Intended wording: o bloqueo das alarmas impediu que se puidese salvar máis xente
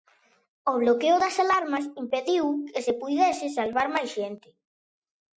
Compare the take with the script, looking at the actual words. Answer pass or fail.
pass